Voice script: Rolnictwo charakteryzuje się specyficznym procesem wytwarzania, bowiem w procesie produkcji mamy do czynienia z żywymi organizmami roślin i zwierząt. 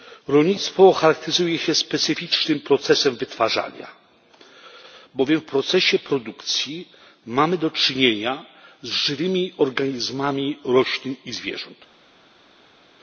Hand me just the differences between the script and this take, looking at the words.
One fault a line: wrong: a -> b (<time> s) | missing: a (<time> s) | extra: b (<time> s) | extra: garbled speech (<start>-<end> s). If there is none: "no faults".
no faults